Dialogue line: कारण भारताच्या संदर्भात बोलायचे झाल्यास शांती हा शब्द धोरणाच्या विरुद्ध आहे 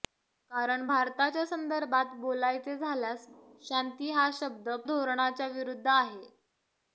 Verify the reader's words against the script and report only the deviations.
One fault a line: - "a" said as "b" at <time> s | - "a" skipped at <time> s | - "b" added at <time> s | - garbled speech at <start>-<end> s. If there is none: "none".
none